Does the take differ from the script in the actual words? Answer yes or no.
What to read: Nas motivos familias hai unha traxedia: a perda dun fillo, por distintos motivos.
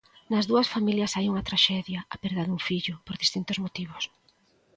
yes